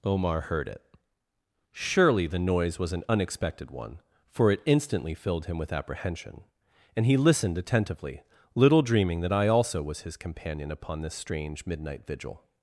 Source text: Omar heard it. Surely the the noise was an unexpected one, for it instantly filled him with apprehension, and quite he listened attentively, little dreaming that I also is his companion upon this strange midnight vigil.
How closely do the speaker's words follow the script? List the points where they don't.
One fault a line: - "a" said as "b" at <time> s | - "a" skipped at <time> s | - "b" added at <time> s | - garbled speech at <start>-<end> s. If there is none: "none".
- "the" skipped at 2.4 s
- "quite" skipped at 7.0 s
- "is" said as "was" at 9.8 s